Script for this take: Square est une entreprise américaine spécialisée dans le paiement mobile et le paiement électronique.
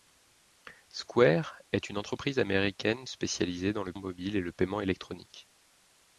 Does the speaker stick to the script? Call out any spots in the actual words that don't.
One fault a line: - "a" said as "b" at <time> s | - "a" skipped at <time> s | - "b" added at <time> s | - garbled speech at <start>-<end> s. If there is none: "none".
- "paiement" skipped at 3.9 s